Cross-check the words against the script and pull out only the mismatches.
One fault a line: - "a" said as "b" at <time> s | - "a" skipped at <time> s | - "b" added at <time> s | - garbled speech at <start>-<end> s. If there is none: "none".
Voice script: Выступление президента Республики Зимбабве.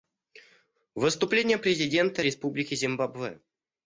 none